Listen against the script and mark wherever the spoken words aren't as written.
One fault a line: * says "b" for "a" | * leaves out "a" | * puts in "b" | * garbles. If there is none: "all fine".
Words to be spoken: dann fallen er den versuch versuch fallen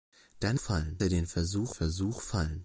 all fine